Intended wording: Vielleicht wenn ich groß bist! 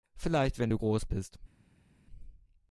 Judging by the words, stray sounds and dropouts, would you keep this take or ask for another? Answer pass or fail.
fail